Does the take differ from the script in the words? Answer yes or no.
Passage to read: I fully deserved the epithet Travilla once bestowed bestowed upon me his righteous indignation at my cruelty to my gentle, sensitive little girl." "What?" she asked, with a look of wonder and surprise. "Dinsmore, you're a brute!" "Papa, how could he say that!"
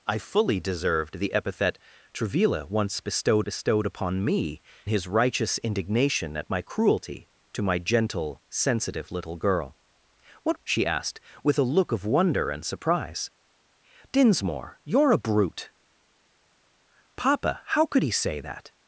no